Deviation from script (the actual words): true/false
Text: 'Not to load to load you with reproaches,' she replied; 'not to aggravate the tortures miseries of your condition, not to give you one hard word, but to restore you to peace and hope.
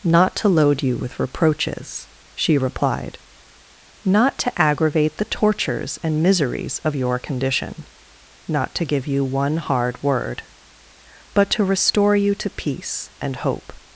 true